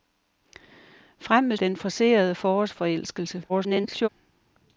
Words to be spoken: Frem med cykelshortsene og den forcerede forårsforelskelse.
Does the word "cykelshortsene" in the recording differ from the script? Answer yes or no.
yes